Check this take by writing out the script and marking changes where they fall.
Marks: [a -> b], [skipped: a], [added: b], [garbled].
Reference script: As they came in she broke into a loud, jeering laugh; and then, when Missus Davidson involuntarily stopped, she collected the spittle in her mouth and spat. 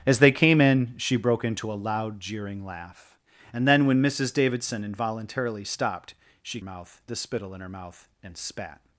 As they came in she broke into a loud, jeering laugh; and then, when Missus Davidson involuntarily stopped, she [collected -> mouth] the spittle in her mouth and spat.